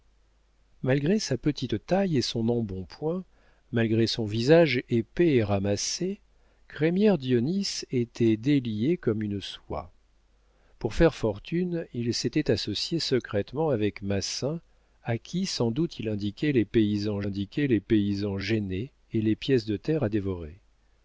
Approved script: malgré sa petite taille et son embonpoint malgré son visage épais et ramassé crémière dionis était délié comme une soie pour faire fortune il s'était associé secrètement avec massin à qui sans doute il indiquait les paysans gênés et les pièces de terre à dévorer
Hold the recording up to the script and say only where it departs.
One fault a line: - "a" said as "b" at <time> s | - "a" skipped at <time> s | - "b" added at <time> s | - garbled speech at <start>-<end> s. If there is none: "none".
- "indiquait les paysans" added at 17.2 s